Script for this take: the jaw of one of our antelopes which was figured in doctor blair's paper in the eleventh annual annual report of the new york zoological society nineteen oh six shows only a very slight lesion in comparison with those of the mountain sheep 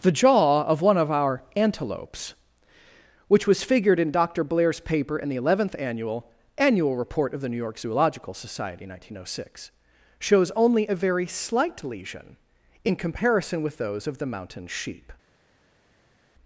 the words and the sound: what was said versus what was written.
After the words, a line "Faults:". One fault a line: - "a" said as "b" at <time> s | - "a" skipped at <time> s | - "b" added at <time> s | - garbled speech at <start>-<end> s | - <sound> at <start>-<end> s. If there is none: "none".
the jaw of one of our antelopes which was figured in doctor blair's paper in the eleventh annual annual report of the new york zoological society nineteen oh six shows only a very slight lesion in comparison with those of the mountain sheep
Faults:
none